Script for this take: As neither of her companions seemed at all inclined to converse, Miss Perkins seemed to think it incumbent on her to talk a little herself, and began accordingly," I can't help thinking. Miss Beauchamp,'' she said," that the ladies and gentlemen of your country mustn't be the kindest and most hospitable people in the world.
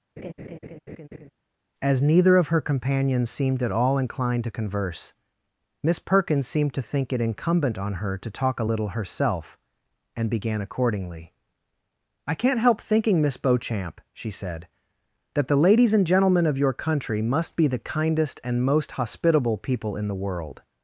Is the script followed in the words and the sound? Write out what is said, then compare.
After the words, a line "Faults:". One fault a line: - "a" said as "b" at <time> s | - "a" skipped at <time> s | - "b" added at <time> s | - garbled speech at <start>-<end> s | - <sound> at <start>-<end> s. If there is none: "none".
As neither of her companions seemed at all inclined to converse, Miss Perkins seemed to think it incumbent on her to talk a little herself, and began accordingly," I can't help thinking. Miss Beauchamp,'' she said," that the ladies and gentlemen of your country must be the kindest and most hospitable people in the world.
Faults:
- laugh at 0.2-1.3 s
- "mustn't" said as "must" at 17.2 s